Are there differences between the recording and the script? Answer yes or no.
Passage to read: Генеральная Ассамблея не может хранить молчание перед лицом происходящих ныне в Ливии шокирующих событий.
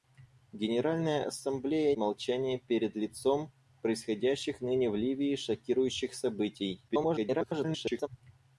yes